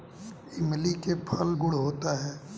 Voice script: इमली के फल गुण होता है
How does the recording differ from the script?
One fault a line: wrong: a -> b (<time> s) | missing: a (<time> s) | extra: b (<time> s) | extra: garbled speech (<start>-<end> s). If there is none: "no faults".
no faults